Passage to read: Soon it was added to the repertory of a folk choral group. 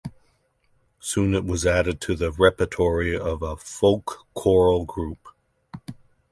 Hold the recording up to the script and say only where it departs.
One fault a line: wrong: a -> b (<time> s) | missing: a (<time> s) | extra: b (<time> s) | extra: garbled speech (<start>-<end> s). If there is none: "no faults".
no faults